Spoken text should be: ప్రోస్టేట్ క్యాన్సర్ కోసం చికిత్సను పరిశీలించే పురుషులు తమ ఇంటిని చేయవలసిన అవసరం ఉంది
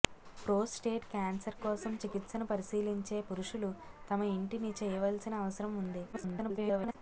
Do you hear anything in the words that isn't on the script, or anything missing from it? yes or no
yes